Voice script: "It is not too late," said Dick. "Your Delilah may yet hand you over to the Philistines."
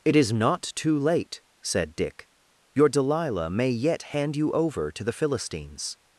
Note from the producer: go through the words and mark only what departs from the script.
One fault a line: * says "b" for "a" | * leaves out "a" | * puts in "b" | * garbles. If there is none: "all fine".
all fine